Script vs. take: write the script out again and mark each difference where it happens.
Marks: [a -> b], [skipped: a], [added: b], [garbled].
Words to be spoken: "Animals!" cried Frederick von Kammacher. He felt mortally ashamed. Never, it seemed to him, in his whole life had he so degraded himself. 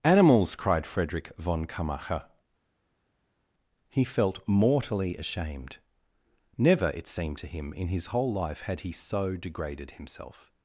"Animals!" cried Frederick von Kammacher. He felt mortally ashamed. Never, it seemed to him, in his whole life had he so degraded himself.